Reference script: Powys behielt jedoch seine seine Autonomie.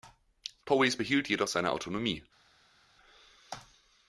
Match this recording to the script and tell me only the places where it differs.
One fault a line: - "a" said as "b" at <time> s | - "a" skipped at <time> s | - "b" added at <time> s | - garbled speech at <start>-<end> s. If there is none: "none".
- "seine" skipped at 1.7 s